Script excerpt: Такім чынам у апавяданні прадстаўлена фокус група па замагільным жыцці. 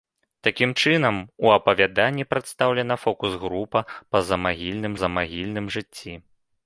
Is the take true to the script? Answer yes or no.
no